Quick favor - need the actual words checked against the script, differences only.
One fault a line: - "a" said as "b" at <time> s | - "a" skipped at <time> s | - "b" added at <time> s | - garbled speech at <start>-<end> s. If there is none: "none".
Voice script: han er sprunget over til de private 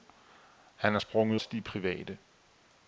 - "over" skipped at 1.4 s